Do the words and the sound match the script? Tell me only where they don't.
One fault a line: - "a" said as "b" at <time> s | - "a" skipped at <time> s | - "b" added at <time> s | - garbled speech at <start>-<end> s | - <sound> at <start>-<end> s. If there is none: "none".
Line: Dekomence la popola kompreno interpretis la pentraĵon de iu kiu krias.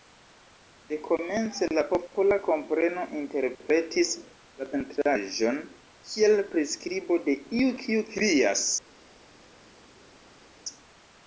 - "kiel priskribo" added at 6.1 s